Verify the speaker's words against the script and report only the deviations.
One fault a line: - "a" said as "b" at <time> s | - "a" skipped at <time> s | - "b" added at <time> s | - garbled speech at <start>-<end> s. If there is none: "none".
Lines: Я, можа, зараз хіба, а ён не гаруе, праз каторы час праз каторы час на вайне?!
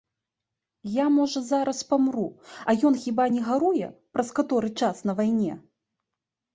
- "хіба" said as "памру" at 1.9 s
- "хіба" added at 3.0 s
- "праз каторы час" skipped at 5.0 s